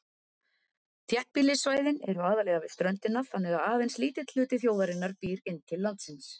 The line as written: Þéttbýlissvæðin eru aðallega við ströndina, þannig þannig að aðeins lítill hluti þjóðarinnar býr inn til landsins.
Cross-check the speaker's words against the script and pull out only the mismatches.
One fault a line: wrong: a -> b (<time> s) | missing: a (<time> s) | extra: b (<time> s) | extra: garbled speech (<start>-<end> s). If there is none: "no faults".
missing: þannig (3.6 s)